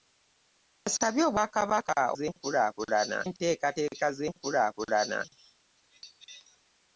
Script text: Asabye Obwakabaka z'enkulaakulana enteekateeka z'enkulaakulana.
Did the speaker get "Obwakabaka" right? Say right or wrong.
right